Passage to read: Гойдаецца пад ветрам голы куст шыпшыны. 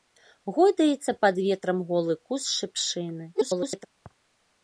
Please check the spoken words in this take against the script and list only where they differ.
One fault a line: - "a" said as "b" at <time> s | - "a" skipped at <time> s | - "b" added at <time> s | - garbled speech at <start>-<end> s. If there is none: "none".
- garbled speech at 3.3-3.9 s